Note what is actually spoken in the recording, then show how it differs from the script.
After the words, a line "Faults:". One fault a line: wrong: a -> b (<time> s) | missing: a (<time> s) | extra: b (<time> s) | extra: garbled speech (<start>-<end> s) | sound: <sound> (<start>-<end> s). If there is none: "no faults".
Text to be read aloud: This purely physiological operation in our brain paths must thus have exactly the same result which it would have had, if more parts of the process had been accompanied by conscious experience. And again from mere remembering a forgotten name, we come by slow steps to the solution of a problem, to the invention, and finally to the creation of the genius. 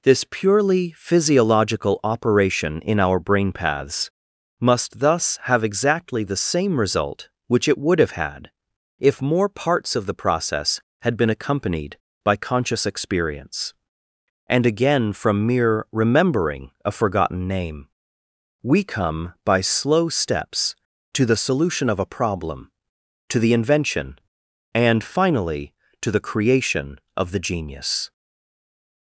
This purely physiological operation in our brain paths must thus have exactly the same result which it would have had, if more parts of the process had been accompanied by conscious experience. And again from mere remembering a forgotten name, we come by slow steps to the solution of a problem, to the invention, and finally to the creation of the genius.
Faults:
no faults